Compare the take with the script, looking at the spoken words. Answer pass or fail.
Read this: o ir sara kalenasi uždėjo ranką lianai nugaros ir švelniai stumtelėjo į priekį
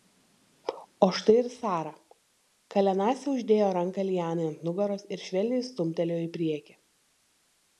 fail